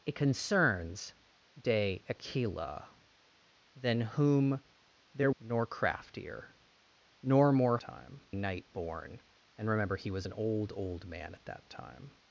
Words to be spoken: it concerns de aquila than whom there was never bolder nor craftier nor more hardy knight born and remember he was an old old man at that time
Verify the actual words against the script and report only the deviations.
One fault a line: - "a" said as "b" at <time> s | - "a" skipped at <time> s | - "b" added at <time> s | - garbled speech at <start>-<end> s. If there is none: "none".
- "was never bolder" skipped at 5.3 s
- "hardy" said as "time" at 7.8 s